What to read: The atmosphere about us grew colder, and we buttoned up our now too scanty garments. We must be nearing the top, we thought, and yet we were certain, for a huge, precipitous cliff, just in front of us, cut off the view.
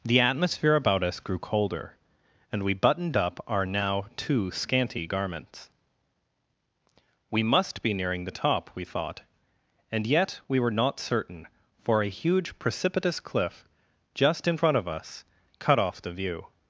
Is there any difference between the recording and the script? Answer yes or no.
yes